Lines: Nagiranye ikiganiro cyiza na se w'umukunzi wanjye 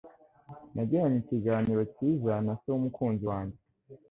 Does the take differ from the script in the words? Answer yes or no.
no